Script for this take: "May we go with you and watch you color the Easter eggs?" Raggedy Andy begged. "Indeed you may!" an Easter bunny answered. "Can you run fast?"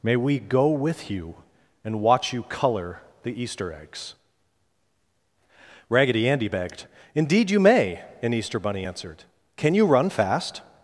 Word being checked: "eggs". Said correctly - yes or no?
yes